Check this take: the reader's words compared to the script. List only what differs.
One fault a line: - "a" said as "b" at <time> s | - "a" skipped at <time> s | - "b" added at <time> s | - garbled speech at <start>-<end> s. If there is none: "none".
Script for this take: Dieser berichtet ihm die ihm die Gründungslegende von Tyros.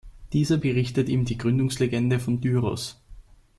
- "ihm die" skipped at 1.4 s